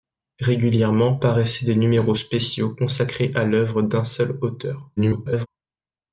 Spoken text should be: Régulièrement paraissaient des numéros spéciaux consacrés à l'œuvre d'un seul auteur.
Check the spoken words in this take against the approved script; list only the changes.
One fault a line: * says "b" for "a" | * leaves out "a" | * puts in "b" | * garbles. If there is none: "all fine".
* garbles